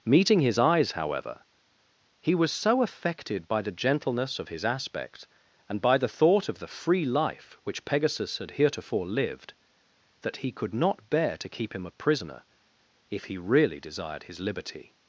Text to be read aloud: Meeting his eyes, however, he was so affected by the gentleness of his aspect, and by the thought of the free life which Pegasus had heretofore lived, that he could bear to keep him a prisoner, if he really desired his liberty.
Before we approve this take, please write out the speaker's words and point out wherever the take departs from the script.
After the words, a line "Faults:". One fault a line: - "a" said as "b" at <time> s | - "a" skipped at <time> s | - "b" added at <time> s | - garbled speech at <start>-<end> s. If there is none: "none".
Meeting his eyes, however, he was so affected by the gentleness of his aspect, and by the thought of the free life which Pegasus had heretofore lived, that he could not bear to keep him a prisoner, if he really desired his liberty.
Faults:
- "not" added at 10.7 s